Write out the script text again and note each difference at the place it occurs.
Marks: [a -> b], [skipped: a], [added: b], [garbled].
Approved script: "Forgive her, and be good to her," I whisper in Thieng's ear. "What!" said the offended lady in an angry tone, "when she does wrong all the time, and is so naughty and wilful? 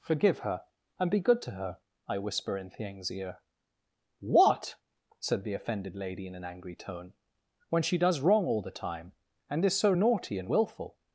"Forgive her, and be good to her," I whisper in Thieng's ear. "What!" said the offended lady in an angry tone, "when she does wrong all the time, and is so naughty and wilful?